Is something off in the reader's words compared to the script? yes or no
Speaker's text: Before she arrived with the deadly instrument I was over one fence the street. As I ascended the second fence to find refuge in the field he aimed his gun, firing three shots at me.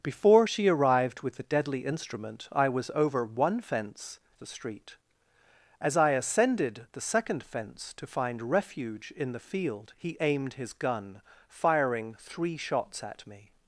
no